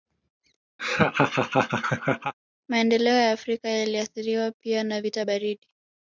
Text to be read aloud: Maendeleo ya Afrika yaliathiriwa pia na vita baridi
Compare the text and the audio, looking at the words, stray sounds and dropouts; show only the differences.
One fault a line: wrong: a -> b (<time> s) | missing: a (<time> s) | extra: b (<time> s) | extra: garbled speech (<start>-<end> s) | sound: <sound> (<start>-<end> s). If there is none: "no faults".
sound: laugh (0.8-2.3 s)